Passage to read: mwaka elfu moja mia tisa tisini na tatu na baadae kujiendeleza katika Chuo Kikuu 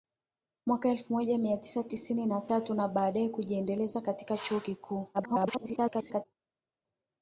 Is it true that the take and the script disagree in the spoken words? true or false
true